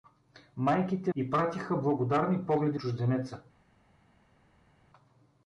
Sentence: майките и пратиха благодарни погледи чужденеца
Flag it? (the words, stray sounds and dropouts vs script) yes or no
no